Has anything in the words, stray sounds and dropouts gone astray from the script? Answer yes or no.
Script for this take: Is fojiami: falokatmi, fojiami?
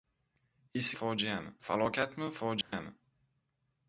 yes